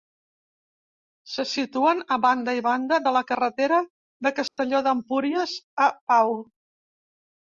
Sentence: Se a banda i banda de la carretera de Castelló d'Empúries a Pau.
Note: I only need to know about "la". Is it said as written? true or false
true